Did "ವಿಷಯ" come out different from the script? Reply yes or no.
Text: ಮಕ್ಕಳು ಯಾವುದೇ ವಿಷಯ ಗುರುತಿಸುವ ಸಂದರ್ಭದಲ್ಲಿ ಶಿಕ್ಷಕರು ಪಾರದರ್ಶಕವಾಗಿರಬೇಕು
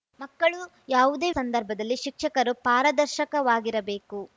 yes